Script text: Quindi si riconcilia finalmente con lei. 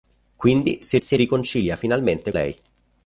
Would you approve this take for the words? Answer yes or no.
no